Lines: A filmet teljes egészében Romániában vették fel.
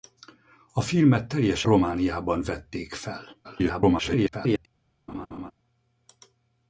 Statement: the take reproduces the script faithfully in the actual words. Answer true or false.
false